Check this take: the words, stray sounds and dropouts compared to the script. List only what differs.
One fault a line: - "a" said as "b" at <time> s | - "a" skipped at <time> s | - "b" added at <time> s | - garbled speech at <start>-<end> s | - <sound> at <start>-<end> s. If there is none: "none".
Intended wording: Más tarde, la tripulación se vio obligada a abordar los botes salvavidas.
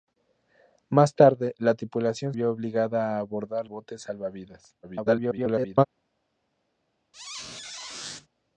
- "se" skipped at 2.3 s
- "los" skipped at 3.7 s
- garbled speech at 4.8-5.8 s
- squeak at 7.1-8.3 s